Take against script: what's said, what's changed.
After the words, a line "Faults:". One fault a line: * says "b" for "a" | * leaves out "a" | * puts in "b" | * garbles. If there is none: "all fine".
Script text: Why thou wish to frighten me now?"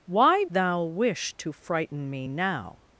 Why thou wish to frighten me now?"
Faults:
all fine